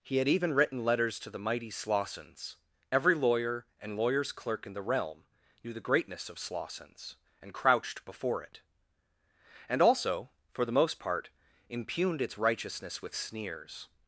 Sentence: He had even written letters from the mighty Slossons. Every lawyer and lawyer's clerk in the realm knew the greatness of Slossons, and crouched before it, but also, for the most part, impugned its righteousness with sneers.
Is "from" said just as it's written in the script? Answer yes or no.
no